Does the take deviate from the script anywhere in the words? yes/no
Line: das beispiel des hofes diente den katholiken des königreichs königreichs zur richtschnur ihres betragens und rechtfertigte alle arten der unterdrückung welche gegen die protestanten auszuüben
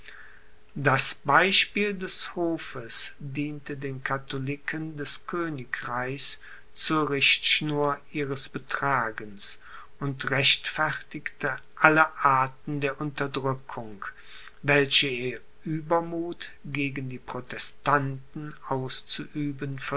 yes